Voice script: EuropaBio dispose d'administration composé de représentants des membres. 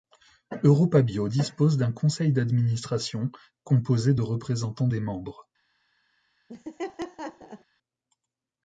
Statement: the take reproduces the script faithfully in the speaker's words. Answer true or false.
false